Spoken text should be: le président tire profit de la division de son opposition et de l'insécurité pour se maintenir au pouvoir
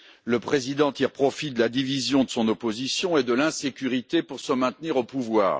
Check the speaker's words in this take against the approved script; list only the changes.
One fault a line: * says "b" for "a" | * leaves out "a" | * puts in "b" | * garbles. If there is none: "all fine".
all fine